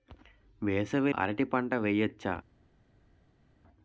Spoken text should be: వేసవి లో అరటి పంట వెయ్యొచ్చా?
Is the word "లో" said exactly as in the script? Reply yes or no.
no